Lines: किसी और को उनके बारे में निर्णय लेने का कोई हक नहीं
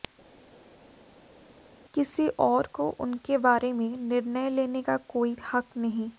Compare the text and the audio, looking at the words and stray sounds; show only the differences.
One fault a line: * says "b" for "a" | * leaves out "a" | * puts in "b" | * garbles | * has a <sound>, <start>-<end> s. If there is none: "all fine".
all fine